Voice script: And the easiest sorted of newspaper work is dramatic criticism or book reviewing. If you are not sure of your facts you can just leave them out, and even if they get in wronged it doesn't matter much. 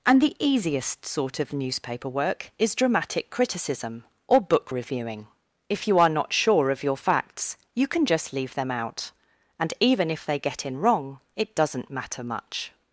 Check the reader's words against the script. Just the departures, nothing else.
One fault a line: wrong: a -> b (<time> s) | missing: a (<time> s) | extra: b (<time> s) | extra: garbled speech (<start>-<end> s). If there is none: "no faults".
wrong: sorted -> sort (1.1 s)
wrong: wronged -> wrong (10.8 s)